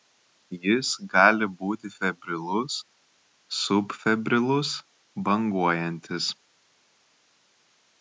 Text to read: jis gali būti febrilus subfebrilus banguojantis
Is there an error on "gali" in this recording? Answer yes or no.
no